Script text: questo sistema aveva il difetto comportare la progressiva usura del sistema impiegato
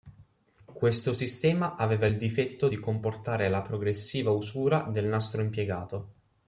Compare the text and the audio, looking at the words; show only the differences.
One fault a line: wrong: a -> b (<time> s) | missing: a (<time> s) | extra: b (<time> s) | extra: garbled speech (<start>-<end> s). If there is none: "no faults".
extra: di (2.7 s)
wrong: sistema -> nastro (5.0 s)